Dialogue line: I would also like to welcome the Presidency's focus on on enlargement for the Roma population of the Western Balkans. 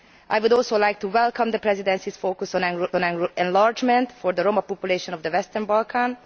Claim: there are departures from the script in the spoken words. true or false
false